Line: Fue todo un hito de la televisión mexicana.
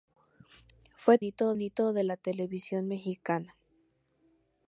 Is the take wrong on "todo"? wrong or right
wrong